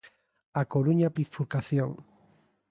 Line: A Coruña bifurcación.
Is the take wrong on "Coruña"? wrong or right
right